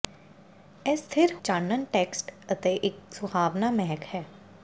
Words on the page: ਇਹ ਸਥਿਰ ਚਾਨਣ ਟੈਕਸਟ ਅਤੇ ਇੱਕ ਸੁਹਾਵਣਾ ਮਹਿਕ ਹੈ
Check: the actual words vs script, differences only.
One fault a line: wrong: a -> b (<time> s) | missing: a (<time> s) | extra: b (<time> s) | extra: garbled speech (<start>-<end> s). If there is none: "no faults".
no faults